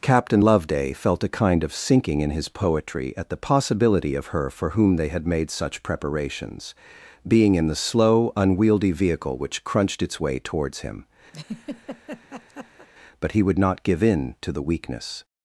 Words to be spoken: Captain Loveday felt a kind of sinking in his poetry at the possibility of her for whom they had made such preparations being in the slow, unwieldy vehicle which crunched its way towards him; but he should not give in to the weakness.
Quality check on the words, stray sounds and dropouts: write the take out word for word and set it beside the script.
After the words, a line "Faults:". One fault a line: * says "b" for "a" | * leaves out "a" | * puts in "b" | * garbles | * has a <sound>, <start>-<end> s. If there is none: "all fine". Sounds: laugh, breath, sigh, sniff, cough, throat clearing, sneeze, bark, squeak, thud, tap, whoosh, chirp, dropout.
Captain Loveday felt a kind of sinking in his poetry at the possibility of her for whom they had made such preparations being in the slow, unwieldy vehicle which crunched its way towards him; but he would not give in to the weakness.
Faults:
* has a laugh, 11.3-12.9 s
* says "would" for "should"